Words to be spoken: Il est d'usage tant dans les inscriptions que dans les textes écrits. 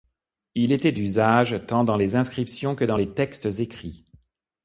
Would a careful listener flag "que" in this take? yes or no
no